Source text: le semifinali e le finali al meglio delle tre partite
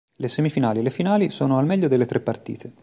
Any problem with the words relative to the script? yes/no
yes